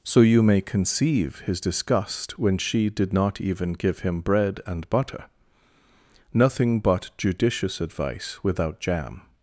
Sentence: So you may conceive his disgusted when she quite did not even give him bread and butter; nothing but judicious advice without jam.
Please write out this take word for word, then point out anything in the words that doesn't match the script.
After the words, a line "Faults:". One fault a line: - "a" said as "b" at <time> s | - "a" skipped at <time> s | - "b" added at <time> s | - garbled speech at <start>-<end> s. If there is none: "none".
So you may conceive his disgust when she did not even give him bread and butter; nothing but judicious advice without jam.
Faults:
- "disgusted" said as "disgust" at 1.6 s
- "quite" skipped at 2.9 s